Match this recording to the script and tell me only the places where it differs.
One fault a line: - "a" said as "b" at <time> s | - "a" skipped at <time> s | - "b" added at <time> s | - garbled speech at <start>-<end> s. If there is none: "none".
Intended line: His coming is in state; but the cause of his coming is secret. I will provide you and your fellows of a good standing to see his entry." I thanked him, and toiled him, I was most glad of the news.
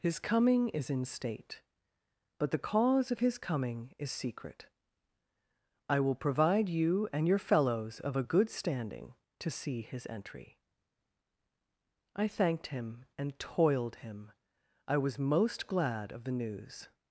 none